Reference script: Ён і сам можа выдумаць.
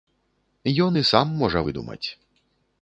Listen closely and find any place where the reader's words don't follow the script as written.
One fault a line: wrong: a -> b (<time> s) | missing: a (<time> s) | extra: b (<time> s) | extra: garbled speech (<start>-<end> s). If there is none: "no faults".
no faults